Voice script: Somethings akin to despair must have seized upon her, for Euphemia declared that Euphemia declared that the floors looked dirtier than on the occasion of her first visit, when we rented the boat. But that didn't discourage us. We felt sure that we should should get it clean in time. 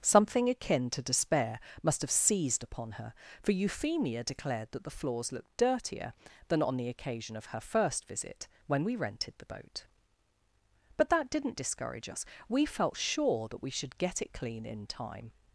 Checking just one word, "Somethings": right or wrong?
wrong